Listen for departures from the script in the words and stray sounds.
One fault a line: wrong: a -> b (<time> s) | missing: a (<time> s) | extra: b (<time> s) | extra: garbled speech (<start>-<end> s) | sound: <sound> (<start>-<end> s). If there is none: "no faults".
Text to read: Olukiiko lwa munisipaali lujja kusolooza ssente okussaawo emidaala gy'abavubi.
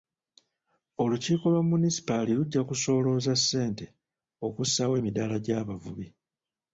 no faults